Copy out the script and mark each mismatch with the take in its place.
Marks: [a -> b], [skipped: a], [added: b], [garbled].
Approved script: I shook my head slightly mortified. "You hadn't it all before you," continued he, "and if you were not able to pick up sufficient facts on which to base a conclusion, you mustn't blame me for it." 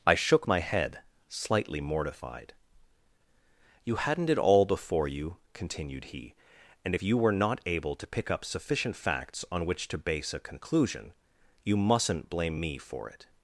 I shook my head slightly mortified. "You hadn't it all before you," continued he, "and if you were not able to pick up sufficient facts on which to base a conclusion, you mustn't blame me for it."